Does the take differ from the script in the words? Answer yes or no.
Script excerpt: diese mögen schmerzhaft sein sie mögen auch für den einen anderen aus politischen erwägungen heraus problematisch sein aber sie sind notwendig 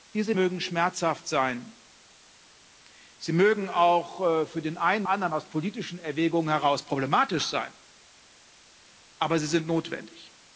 no